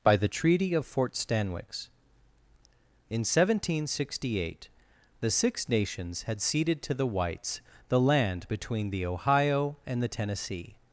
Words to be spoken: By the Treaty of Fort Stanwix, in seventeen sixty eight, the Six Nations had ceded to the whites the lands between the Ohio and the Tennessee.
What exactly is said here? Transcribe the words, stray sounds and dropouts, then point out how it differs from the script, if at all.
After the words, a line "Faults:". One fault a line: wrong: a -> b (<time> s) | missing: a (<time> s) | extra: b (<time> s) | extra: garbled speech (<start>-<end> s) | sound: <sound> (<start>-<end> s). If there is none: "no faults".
By the Treaty of Fort Stanwix, in seventeen sixty eight, the Six Nations had ceded to the whites the land between the Ohio and the Tennessee.
Faults:
wrong: lands -> land (8.0 s)